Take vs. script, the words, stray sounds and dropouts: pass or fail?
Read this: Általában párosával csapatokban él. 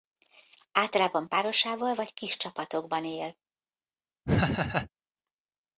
fail